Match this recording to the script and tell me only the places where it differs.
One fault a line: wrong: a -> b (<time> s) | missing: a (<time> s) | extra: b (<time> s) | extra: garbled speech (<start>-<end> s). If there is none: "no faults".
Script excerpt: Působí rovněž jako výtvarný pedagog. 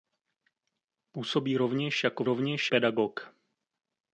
wrong: výtvarný -> rovněž (2.2 s)